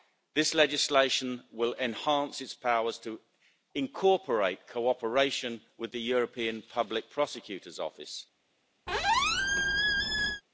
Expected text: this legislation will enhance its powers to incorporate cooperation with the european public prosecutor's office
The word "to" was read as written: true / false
true